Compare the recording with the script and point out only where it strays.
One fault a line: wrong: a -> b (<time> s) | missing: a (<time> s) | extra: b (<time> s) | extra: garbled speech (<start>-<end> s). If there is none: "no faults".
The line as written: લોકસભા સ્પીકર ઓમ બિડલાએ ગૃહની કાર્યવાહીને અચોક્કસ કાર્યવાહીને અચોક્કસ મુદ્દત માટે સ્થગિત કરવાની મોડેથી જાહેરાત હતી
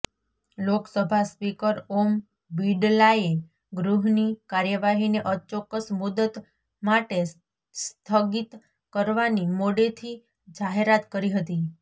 missing: કાર્યવાહીને અચોક્કસ (5.9 s)
extra: કરી (11.1 s)